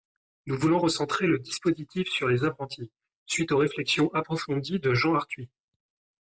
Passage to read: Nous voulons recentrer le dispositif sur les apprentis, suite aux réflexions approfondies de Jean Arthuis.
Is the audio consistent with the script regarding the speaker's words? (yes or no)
yes